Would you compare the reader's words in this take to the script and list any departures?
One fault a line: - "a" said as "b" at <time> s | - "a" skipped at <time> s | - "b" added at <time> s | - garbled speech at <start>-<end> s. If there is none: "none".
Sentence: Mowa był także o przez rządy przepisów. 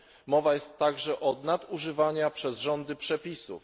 - "był" said as "jest" at 0.5 s
- "nadużywaniu" added at 1.4 s